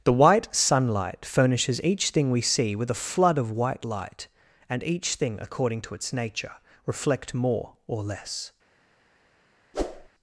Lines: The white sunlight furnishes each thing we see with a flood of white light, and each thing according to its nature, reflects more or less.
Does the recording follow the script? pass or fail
fail